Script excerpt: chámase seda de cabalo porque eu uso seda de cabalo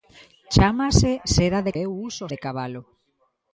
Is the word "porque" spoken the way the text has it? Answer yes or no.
no